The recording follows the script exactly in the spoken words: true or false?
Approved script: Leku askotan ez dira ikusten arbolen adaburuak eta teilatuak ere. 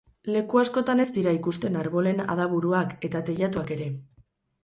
true